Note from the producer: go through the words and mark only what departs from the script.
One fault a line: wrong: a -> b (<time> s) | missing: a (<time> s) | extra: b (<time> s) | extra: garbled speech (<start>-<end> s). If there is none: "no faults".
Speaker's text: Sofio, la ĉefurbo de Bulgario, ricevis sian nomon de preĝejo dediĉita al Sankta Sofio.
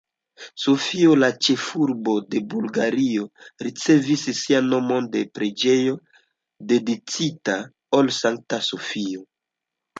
no faults